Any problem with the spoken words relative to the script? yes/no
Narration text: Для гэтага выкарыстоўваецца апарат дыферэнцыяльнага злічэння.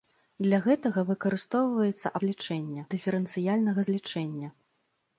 yes